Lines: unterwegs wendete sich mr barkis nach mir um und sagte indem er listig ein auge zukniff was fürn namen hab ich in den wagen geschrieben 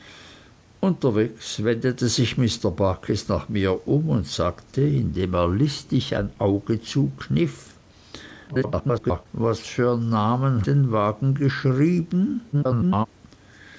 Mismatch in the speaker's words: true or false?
true